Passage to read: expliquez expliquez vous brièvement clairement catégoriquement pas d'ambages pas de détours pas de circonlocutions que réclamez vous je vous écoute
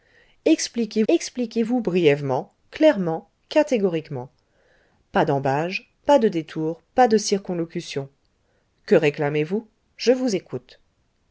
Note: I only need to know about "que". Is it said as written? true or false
true